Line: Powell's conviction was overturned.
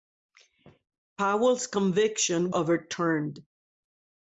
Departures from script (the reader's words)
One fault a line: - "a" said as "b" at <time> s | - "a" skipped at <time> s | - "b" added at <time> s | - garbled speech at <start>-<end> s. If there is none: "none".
- "was" skipped at 2.5 s